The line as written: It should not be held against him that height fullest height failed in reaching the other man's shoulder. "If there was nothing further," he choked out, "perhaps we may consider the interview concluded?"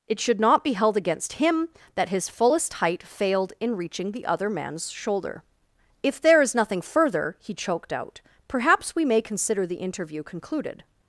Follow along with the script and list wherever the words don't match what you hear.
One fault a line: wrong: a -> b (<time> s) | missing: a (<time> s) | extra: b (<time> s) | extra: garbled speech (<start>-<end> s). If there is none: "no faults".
wrong: height -> his (2.1 s)
wrong: was -> is (6.4 s)